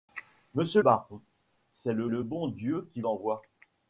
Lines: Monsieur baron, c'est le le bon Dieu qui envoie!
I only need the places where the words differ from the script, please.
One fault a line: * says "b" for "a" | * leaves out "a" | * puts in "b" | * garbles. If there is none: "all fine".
all fine